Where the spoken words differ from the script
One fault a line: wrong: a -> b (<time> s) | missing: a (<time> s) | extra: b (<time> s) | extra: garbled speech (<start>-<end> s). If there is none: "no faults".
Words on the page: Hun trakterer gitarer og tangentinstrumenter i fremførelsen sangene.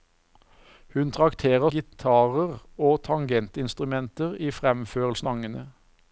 no faults